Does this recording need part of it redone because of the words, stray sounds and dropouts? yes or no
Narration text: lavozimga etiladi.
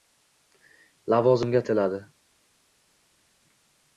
no